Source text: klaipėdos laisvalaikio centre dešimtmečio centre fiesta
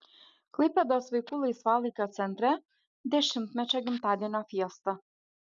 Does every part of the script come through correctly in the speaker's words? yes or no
no